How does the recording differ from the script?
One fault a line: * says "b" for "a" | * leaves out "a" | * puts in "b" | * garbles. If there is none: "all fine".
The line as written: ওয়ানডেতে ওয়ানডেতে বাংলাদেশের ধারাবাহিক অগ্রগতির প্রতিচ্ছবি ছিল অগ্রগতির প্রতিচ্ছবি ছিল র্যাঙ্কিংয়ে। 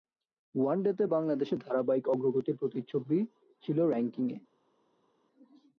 * leaves out "ওয়ানডেতে"
* leaves out "অগ্রগতির প্রতিচ্ছবি ছিল"